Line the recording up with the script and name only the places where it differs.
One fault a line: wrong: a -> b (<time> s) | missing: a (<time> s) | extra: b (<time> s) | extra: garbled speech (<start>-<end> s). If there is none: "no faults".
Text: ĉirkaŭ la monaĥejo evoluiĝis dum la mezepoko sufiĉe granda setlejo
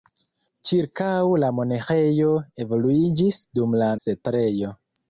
missing: mezepoko sufiĉe granda (3.9 s)